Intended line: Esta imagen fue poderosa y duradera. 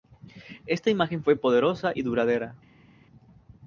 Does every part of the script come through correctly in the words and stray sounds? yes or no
yes